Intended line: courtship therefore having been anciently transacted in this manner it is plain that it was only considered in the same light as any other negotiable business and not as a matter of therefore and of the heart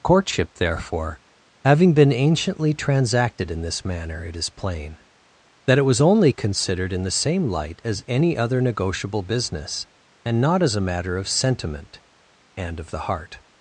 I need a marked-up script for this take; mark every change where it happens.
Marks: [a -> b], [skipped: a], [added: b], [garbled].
courtship therefore having been anciently transacted in this manner it is plain that it was only considered in the same light as any other negotiable business and not as a matter of [therefore -> sentiment] and of the heart